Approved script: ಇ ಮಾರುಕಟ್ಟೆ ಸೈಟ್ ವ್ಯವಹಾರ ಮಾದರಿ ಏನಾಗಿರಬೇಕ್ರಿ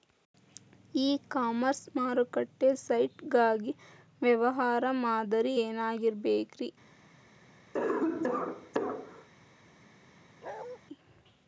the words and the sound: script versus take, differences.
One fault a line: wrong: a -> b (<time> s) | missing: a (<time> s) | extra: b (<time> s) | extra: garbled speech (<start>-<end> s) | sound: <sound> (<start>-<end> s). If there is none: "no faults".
extra: ಕಾಮರ್ಸ್ (1.3 s)
extra: ಗಾಗಿ (3.3 s)
sound: cough (7.7-9.3 s)
sound: bark (10.4-10.8 s)